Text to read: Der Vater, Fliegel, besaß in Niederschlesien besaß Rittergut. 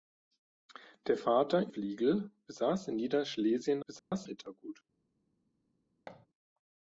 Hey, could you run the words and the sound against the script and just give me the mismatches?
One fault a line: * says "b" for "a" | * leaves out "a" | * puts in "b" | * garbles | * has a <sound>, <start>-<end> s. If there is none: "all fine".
* has a dropout, 4.0-4.1 s
* has a thud, 6.1-6.3 s